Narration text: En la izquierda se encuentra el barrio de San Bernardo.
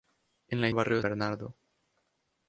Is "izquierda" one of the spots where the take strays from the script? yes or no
yes